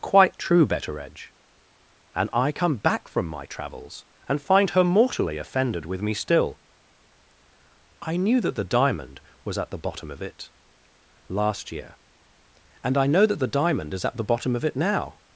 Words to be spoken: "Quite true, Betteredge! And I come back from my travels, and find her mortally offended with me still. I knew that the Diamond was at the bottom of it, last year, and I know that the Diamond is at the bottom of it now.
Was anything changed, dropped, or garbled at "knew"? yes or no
no